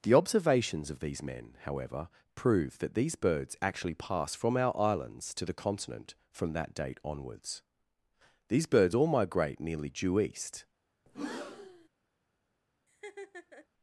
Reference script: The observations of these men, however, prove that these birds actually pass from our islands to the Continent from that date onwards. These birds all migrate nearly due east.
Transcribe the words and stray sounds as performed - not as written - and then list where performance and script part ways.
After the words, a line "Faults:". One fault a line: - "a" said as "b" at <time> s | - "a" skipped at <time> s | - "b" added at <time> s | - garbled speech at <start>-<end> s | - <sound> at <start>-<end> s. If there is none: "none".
The observations of these men, however, prove that these birds actually pass from our islands to the Continent from that date onwards. These birds all migrate nearly due east.
Faults:
- breath at 11.1-11.9 s
- laugh at 12.9-13.7 s